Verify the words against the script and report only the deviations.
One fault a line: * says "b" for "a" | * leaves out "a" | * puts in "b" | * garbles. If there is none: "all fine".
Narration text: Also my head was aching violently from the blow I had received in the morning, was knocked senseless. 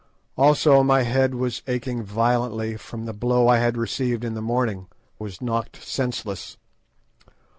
all fine